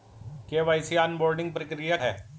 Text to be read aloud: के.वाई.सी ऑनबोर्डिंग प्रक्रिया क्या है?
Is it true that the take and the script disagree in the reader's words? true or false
true